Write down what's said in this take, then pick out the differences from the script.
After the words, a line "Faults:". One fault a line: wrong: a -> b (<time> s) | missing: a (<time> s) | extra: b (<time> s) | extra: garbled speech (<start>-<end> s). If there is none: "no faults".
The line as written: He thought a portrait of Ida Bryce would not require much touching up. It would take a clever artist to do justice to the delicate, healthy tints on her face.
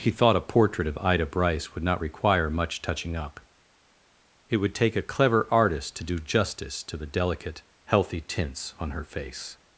He thought a portrait of Ida Bryce would not require much touching up. It would take a clever artist to do justice to the delicate, healthy tints on her face.
Faults:
no faults